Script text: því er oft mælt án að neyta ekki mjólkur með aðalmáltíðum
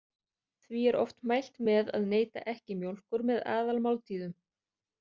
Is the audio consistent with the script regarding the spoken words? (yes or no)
no